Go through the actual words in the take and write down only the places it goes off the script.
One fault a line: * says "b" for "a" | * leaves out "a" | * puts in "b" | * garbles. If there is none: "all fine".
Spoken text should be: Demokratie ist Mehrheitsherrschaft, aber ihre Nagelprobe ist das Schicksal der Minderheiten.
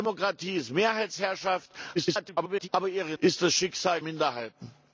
* garbles
* leaves out "Nagelprobe"
* leaves out "der"